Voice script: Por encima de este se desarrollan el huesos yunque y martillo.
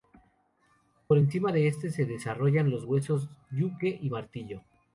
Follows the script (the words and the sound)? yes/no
no